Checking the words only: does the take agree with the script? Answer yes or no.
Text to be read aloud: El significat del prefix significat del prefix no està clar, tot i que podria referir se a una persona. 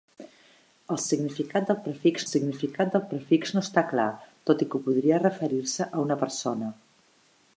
yes